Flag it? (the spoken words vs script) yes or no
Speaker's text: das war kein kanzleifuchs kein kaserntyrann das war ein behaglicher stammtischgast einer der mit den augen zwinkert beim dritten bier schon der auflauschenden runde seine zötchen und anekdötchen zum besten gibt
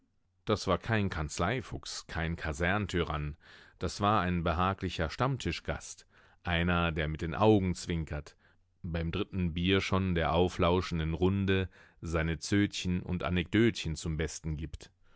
no